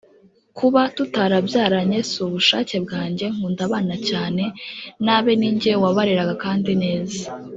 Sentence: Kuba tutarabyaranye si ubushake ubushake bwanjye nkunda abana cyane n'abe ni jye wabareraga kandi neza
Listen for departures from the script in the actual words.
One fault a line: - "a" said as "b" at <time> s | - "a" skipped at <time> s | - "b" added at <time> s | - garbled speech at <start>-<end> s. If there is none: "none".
- "ubushake" skipped at 2.8 s